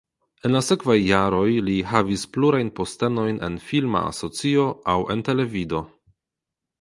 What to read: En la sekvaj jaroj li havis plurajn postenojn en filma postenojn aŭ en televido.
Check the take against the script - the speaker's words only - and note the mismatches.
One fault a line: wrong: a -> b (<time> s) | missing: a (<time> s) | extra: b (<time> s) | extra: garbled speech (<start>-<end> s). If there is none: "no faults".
wrong: postenojn -> asocio (4.1 s)